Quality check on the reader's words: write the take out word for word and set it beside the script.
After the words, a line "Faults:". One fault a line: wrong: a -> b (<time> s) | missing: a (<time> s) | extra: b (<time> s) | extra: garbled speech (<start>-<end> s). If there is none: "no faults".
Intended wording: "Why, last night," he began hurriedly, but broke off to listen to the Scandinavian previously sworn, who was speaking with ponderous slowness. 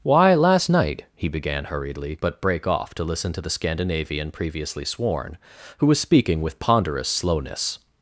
"Why, last night," he began hurriedly, but brake off to listen to the Scandinavian previously sworn, who was speaking with ponderous slowness.
Faults:
wrong: broke -> brake (2.4 s)